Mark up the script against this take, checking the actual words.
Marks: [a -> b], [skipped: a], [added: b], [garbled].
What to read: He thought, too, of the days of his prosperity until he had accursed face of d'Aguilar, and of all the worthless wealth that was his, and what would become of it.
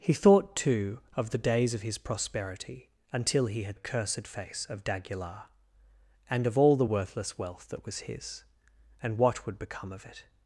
He thought, too, of the days of his prosperity until he had accursed face of d'Aguilar, and of all the worthless wealth that was his, and what would become of it.